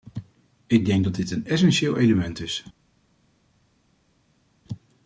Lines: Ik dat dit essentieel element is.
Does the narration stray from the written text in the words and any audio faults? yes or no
yes